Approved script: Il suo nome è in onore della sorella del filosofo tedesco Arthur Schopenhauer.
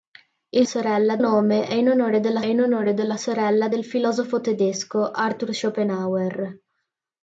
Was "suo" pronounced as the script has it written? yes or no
no